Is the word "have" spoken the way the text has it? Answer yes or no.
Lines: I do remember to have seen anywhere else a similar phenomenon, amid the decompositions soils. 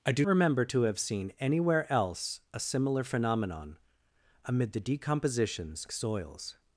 yes